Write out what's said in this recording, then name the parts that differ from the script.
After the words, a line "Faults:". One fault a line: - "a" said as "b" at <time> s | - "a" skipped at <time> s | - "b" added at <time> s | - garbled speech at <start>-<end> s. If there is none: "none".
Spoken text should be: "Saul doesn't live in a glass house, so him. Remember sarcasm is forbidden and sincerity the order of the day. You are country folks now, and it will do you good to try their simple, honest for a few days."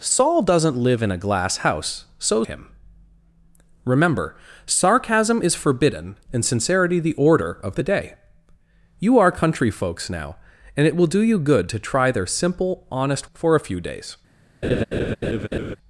"Saul doesn't live in a glass house, so him. Remember sarcasm is forbidden and sincerity the order of the day. You are country folks now, and it will do you good to try their simple, honest for a few days."
Faults:
none